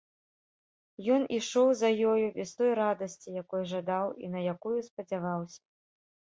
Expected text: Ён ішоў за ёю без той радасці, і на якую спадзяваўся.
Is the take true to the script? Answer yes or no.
no